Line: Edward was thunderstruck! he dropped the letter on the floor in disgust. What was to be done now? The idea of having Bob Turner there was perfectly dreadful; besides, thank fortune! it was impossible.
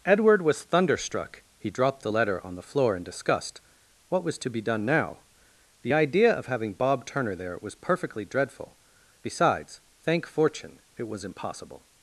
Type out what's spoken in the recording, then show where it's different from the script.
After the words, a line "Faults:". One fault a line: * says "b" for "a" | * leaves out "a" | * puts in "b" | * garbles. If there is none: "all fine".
Edward was thunderstruck! he dropped the letter on the floor in disgust. What was to be done now? The idea of having Bob Turner there was perfectly dreadful; besides, thank fortune! it was impossible.
Faults:
all fine